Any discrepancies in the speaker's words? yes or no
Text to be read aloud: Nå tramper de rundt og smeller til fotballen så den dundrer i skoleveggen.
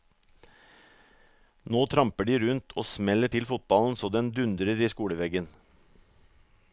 no